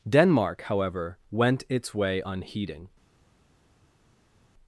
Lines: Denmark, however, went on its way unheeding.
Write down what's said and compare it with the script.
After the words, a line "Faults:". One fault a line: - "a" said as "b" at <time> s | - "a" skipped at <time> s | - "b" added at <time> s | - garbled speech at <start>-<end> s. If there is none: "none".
Denmark, however, went its way unheeding.
Faults:
- "on" skipped at 1.6 s